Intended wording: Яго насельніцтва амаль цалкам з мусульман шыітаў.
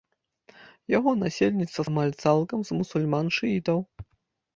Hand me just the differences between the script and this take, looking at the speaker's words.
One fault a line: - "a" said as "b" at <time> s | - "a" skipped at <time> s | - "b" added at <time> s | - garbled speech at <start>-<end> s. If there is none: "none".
none